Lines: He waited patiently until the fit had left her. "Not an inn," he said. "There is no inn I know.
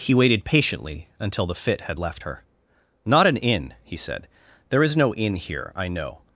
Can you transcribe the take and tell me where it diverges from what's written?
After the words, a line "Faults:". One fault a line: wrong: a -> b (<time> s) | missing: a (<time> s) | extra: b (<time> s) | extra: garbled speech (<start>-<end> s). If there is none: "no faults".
He waited patiently until the fit had left her. "Not an inn," he said. "There is no inn here, I know.
Faults:
extra: here (5.4 s)